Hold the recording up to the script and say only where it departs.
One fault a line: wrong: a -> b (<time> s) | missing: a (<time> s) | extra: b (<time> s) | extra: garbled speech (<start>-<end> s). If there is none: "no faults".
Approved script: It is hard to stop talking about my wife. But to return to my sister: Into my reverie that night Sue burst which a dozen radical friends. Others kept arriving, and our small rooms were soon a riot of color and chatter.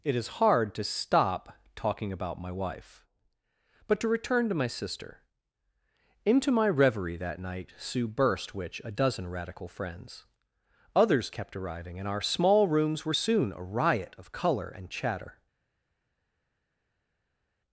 no faults